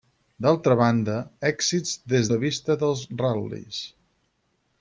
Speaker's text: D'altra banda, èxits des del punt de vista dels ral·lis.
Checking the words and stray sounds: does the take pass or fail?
fail